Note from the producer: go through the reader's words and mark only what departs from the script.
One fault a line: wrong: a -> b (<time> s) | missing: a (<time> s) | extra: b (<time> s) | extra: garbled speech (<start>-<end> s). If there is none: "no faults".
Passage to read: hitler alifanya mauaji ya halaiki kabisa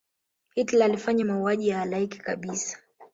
no faults